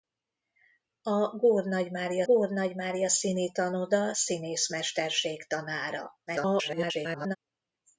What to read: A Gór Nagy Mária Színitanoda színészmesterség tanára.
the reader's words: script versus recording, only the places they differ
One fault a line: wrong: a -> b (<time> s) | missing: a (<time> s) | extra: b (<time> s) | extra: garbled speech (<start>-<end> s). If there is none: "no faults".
extra: Gór Nagy Mária (2.2 s)
extra: garbled speech (6.3-7.4 s)